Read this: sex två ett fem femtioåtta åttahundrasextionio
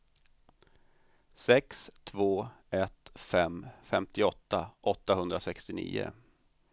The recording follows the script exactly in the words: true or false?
true